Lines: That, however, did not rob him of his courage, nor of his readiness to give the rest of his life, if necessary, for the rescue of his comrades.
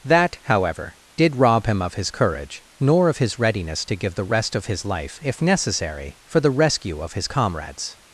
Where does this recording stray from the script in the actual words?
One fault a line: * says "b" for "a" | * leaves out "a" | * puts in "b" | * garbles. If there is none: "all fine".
* leaves out "not"